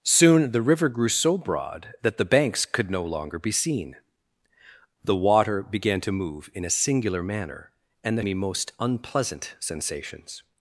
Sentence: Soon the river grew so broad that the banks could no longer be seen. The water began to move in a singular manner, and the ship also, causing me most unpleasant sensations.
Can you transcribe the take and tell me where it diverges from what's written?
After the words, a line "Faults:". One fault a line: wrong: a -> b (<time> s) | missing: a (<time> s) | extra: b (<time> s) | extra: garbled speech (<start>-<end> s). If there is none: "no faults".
Soon the river grew so broad that the banks could no longer be seen. The water began to move in a singular manner, and the me most unpleasant sensations.
Faults:
missing: ship also causing (8.2 s)